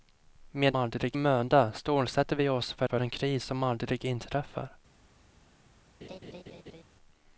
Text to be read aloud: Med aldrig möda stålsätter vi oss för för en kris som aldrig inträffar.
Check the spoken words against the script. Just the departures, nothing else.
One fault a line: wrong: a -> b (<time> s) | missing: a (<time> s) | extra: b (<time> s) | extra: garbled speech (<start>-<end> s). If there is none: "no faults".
no faults